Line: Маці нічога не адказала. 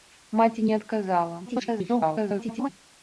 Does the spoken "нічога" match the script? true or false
false